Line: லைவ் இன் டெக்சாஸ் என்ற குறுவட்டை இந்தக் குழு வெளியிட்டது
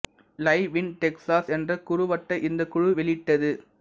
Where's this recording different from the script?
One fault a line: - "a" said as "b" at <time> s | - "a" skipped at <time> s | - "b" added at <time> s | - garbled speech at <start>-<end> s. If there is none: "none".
none